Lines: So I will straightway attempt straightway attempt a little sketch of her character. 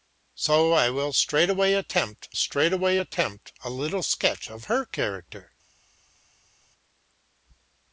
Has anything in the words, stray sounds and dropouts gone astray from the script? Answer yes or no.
no